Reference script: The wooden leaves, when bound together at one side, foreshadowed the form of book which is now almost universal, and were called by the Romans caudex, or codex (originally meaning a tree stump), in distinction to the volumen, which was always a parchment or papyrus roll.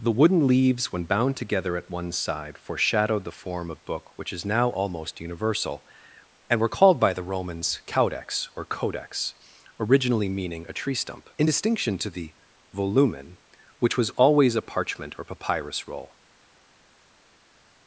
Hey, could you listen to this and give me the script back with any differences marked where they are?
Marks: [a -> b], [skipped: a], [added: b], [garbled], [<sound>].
The wooden leaves, when bound together at one side, foreshadowed the form of book which is now almost universal, and were called by the Romans caudex, or codex (originally meaning a tree stump), in distinction to the volumen, which was always a parchment or papyrus roll.